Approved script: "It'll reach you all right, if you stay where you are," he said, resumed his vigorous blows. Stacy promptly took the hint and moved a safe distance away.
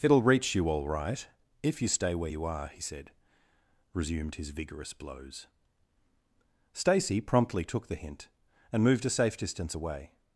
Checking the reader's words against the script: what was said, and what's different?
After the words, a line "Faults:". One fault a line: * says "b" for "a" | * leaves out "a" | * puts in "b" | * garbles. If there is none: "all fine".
"It'll reach you all right, if you stay where you are," he said, resumed his vigorous blows. Stacy promptly took the hint and moved a safe distance away.
Faults:
all fine